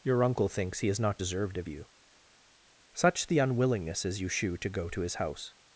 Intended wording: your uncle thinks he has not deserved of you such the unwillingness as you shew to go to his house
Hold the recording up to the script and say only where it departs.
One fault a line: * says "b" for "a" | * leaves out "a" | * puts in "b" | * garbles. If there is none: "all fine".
all fine